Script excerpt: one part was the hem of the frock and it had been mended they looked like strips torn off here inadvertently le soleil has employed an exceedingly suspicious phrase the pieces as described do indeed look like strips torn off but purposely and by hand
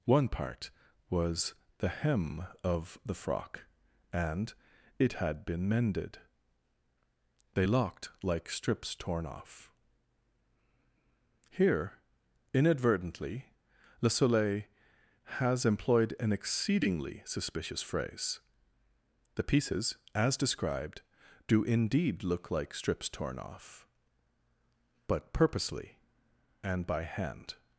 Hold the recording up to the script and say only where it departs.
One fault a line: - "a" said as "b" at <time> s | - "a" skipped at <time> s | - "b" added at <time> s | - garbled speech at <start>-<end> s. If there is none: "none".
- "looked" said as "locked" at 7.6 s